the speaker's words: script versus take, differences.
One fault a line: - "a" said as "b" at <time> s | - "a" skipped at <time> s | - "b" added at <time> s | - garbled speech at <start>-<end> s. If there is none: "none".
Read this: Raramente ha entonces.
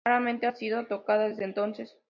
- "sido tocada desde" added at 0.5 s